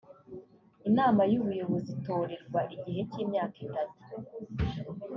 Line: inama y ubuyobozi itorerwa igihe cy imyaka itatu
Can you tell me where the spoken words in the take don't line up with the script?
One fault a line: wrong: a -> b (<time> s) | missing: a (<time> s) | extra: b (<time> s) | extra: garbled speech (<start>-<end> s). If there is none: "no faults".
no faults